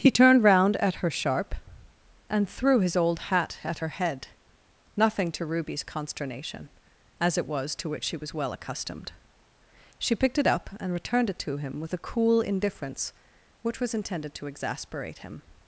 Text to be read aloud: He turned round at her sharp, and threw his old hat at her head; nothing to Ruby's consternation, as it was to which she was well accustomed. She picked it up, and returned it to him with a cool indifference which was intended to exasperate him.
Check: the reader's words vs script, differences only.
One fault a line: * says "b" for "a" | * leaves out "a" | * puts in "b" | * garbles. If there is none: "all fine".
all fine